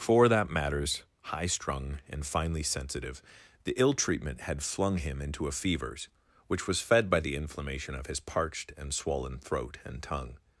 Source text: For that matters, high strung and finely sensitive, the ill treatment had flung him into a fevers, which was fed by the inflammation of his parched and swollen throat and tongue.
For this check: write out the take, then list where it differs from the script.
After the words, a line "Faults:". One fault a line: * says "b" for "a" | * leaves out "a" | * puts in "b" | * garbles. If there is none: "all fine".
For that matters, high strung and finely sensitive, the ill treatment had flung him into a fevers, which was fed by the inflammation of his parched and swollen throat and tongue.
Faults:
all fine